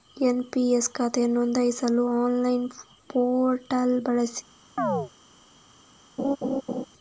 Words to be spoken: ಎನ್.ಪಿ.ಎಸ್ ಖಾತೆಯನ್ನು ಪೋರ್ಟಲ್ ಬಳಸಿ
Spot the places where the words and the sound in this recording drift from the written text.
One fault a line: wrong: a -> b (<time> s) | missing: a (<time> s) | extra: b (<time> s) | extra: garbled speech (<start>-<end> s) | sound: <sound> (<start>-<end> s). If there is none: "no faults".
extra: ನೋಂದಾಯಿಸಲು ಆನ್ಲೈನ್ (1.4 s)
sound: chirp (4.8-5.1 s)
sound: laugh (6.2-6.8 s)